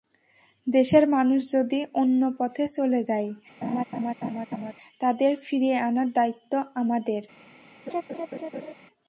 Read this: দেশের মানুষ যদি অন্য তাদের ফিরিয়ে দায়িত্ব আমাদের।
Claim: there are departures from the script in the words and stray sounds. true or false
true